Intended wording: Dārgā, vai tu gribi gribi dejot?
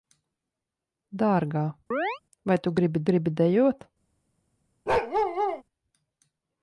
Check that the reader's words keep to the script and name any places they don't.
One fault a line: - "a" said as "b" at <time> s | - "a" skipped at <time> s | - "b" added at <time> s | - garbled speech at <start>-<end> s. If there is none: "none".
none